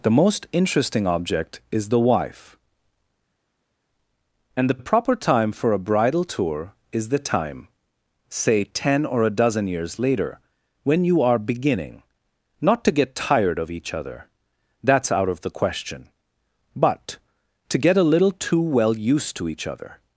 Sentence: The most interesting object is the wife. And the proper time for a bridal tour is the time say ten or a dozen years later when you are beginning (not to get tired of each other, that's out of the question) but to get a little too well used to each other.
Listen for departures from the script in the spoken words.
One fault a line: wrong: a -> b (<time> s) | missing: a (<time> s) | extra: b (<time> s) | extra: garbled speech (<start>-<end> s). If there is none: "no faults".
extra: the (4.8 s)